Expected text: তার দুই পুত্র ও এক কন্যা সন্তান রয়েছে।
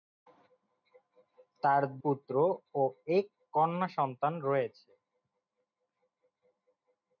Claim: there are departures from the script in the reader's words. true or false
true